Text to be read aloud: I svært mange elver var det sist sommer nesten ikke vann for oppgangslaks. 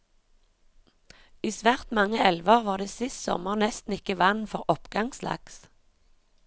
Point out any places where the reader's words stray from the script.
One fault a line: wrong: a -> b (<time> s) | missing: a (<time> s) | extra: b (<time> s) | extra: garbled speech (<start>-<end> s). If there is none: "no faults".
no faults